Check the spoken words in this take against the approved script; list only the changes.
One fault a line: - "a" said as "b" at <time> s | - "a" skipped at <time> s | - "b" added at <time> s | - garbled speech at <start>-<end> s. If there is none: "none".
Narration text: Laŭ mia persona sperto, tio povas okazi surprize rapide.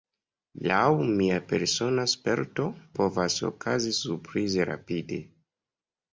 - "tio" skipped at 2.7 s